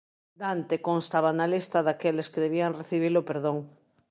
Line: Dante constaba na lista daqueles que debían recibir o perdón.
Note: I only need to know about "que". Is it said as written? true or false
true